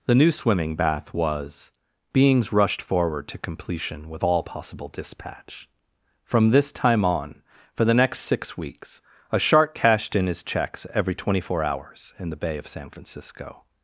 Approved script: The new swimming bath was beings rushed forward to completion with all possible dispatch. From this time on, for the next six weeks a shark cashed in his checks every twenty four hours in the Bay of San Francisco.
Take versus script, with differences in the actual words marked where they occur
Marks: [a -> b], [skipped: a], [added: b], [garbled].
The new swimming bath was beings rushed forward to completion with all possible dispatch. From this time on, for the next six weeks a shark cashed in his checks every twenty four hours in the Bay of San Francisco.